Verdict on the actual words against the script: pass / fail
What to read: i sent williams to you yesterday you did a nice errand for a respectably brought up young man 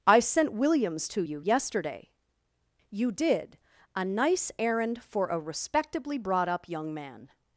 pass